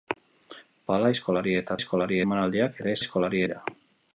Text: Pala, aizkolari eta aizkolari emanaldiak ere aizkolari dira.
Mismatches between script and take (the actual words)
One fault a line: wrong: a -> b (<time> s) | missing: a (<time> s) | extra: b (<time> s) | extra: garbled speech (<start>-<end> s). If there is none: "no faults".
no faults